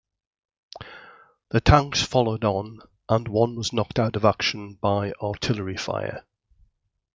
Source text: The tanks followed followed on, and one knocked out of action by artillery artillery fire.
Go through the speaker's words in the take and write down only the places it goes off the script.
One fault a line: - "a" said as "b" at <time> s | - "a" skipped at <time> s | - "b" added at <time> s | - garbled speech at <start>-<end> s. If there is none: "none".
- "followed" skipped at 2.4 s
- "was" added at 3.5 s
- "artillery" skipped at 5.8 s